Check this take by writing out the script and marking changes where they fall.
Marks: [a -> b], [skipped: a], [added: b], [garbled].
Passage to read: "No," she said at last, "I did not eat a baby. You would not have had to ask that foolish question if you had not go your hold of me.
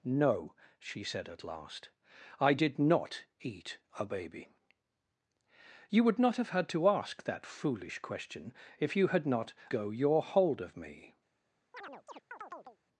"No," she said at last, "I did not eat a baby. You would not have had to ask that foolish question if you had not go your hold of me.